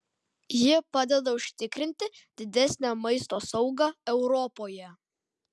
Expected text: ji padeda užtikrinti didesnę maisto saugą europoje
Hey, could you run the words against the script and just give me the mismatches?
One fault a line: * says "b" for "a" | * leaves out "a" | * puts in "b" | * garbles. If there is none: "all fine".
all fine